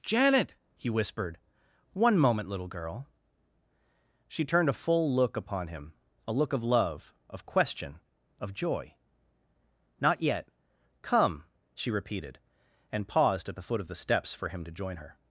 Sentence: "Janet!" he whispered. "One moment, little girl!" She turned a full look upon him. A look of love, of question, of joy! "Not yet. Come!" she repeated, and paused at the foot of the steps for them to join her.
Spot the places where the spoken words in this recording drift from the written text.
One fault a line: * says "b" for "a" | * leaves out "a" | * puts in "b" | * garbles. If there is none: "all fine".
* says "him" for "them"